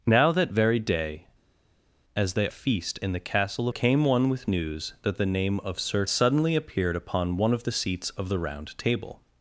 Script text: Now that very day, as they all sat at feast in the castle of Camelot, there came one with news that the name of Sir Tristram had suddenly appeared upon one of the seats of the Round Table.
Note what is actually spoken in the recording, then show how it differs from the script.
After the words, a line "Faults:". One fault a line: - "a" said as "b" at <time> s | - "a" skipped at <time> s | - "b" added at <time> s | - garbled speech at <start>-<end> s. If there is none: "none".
Now that very day, as they feast in the castle came one with news that the name of Sir Suddenly appeared upon one of the seats of the Round Table.
Faults:
- "all sat at" skipped at 2.5 s
- "of Camelot there" skipped at 3.7 s
- "Tristram had" skipped at 6.0 s